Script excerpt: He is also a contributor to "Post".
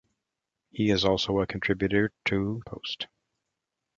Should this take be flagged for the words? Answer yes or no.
no